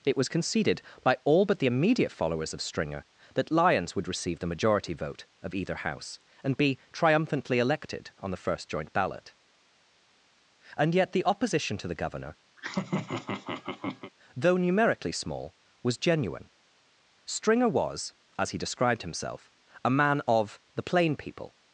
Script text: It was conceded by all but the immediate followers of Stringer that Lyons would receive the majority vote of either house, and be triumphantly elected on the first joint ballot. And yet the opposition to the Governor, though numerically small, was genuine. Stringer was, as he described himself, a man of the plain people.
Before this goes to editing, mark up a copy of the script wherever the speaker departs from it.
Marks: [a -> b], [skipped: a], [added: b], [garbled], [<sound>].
It was conceded by all but the immediate followers of Stringer that Lyons would receive the majority vote of either house, and be triumphantly elected on the first joint ballot. And yet the opposition to the Governor, [laugh] though numerically small, was genuine. Stringer was, as he described himself, a man of the plain people.